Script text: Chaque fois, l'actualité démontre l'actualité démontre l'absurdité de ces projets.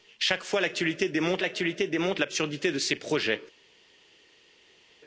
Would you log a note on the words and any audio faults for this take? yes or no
no